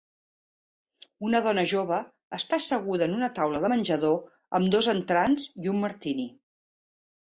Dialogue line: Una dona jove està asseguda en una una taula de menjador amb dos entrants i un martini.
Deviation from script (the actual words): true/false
true